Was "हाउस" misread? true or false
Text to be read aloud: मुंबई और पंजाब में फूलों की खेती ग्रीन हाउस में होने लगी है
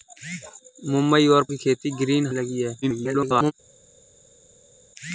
true